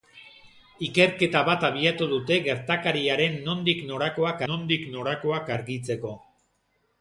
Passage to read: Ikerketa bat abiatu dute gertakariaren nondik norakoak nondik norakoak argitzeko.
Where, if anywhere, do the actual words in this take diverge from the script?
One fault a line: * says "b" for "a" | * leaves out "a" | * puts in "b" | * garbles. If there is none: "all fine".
all fine